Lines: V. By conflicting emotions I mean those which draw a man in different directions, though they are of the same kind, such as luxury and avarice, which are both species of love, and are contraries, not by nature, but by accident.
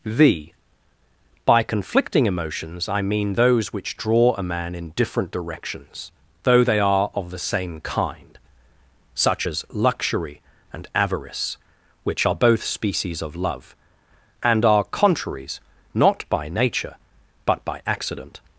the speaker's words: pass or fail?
pass